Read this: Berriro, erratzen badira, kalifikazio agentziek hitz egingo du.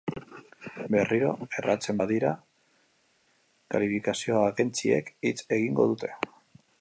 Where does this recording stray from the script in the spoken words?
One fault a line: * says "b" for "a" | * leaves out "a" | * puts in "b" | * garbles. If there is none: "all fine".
* says "dute" for "du"